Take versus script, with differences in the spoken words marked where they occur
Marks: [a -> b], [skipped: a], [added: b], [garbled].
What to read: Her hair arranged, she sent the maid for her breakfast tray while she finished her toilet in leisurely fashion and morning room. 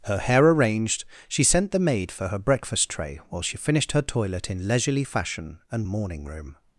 Her hair arranged, she sent the maid for her breakfast tray while she finished her toilet in leisurely fashion and morning room.